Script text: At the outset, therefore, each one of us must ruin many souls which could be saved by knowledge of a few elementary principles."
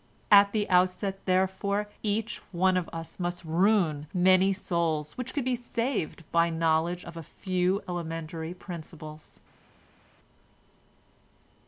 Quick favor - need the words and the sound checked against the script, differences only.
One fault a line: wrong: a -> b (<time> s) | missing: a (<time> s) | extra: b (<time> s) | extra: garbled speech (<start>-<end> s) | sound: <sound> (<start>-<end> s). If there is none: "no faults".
no faults